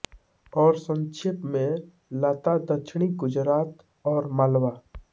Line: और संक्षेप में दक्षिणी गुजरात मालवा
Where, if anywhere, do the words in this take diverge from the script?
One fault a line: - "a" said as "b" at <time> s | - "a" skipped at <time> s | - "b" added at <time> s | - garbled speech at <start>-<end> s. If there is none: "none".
- "लता" added at 2.2 s
- "और" added at 4.0 s